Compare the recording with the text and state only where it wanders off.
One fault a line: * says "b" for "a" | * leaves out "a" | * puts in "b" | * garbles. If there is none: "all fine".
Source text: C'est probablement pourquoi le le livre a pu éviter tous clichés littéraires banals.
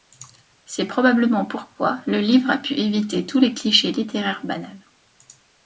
* leaves out "le"
* puts in "les"